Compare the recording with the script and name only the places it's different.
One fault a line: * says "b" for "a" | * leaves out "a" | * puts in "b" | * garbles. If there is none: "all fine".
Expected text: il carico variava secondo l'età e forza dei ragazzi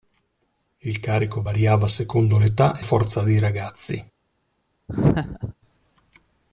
all fine